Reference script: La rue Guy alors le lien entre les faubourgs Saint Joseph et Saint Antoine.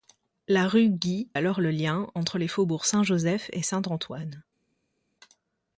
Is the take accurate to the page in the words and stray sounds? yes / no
yes